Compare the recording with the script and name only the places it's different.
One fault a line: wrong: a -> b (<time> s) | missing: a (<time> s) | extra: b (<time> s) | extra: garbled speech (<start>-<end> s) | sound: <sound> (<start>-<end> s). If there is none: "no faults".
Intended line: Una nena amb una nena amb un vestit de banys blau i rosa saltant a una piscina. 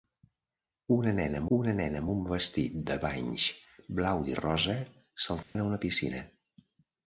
sound: dropout (5.4-5.6 s)